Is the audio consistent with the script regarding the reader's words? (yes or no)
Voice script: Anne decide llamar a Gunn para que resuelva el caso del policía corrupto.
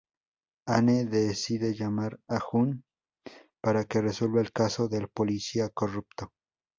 yes